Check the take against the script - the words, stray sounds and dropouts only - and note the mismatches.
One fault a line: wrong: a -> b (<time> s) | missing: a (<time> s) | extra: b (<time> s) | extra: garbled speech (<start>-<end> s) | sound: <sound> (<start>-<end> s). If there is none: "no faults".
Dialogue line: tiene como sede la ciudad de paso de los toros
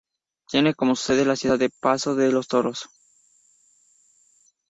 no faults